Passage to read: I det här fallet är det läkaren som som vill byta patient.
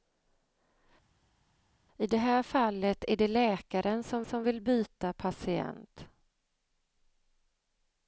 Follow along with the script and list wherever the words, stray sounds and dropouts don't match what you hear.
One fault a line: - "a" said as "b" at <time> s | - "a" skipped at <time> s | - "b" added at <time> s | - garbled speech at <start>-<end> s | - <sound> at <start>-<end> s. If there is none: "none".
none